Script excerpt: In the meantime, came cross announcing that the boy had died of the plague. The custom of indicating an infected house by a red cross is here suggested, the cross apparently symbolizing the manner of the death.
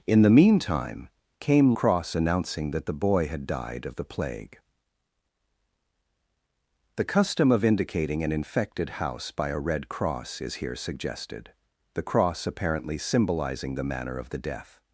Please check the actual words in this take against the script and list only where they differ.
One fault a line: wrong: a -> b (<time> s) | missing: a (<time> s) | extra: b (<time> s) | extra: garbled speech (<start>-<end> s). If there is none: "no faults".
no faults